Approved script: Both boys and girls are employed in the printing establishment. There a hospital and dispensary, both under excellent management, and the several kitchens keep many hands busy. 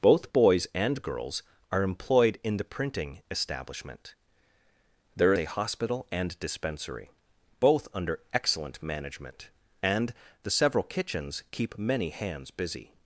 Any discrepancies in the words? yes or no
no